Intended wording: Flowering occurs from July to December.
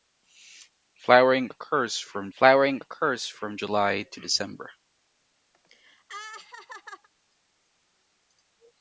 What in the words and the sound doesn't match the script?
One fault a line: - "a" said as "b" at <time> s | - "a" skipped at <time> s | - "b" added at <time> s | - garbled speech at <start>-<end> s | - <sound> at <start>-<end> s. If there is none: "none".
- "flowering occurs from" added at 2.4 s
- laugh at 5.5-7.1 s